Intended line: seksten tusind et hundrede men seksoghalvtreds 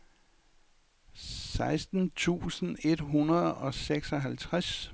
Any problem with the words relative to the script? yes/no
yes